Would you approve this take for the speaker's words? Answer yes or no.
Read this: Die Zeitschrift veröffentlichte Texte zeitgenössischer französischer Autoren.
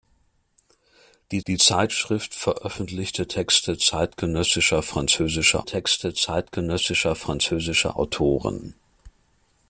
no